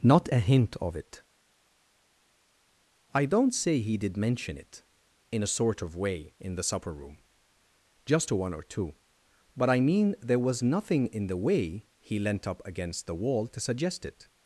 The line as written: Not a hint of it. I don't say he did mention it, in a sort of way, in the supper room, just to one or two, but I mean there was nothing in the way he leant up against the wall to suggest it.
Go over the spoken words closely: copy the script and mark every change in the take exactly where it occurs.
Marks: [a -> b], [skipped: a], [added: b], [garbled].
Not a hint of it. I don't say he did mention it, in a sort of way, in the supper room, just to one or two, but I mean there was nothing in the way he leant up against the wall to suggest it.